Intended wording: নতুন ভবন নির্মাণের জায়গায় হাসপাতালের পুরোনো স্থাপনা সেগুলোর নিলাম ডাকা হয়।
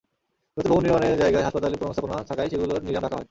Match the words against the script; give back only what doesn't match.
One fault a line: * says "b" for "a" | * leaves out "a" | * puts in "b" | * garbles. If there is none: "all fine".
* puts in "থাকায়"